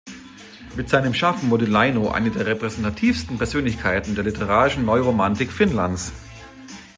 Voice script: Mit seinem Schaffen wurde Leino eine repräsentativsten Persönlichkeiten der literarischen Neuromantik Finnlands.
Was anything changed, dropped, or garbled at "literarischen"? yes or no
no